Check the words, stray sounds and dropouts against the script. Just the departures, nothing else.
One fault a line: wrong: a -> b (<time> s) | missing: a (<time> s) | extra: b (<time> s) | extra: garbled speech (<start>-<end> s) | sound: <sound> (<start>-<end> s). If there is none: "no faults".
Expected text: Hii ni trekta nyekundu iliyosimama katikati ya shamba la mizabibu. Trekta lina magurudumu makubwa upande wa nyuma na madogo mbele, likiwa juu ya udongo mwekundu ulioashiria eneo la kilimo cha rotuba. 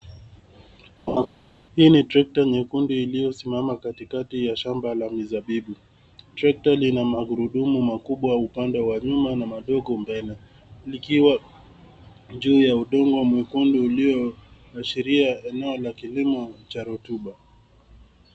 sound: laugh (1.1-1.3 s)